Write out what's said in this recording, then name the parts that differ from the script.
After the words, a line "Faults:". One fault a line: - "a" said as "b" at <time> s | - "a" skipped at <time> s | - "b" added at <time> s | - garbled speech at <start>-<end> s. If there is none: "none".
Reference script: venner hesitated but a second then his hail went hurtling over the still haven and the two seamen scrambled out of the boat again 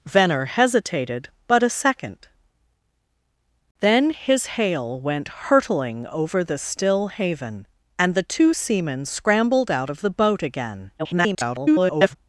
venner hesitated but a second then his hail went hurtling over the still haven and the two seamen scrambled out of the boat again [garbled]
Faults:
- garbled speech at 11.0-12.2 s